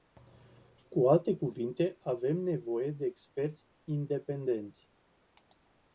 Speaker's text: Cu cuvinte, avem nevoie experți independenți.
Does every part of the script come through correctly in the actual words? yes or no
no